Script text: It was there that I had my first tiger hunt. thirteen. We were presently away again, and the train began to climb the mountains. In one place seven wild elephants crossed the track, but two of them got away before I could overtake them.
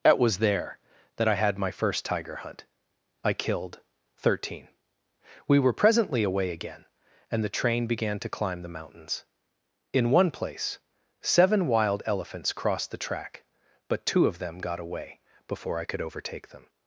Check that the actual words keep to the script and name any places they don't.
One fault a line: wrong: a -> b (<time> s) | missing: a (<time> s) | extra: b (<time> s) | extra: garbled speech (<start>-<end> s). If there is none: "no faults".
extra: I killed (3.2 s)